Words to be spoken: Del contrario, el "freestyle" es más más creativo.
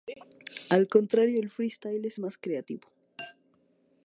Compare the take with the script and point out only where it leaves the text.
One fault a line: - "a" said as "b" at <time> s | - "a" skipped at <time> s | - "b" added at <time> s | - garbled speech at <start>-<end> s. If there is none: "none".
- "Del" said as "Al" at 0.7 s
- "más" skipped at 2.4 s